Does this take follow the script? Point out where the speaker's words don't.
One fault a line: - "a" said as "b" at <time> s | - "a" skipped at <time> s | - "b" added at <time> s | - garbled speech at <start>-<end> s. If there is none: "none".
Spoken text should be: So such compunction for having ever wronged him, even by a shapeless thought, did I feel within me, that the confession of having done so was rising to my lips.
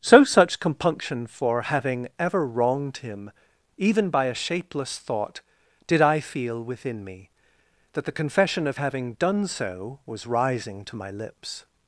none